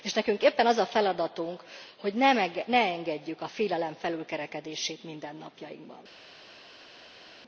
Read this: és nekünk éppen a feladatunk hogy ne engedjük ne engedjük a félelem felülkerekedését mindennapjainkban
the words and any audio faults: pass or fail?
fail